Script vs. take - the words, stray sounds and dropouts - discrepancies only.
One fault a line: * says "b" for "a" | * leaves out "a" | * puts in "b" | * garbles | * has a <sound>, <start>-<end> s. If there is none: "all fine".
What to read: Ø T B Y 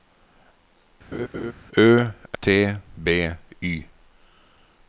* has a laugh, 1.1-1.5 s